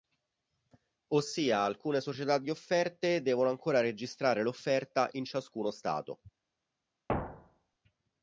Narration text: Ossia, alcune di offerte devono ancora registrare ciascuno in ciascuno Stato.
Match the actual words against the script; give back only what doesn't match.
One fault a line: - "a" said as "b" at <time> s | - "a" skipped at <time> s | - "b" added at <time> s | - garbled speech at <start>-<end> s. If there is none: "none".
- "società" added at 2.0 s
- "ciascuno" said as "l'offerta" at 4.4 s